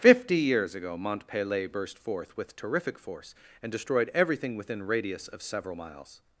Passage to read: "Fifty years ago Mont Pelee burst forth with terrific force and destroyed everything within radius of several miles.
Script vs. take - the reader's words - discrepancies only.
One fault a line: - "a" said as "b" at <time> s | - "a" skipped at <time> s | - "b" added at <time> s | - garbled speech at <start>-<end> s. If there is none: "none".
none